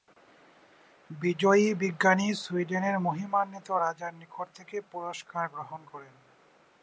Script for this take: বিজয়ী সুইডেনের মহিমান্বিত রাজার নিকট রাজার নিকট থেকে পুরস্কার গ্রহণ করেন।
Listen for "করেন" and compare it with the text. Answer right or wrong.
right